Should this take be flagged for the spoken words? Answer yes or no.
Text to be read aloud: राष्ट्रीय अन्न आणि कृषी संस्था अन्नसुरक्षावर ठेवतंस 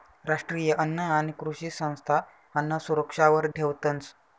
no